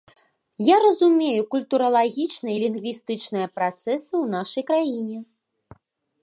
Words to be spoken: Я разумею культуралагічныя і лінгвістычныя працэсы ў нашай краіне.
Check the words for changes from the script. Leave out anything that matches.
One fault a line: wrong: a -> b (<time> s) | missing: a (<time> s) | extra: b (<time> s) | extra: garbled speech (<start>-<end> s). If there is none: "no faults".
no faults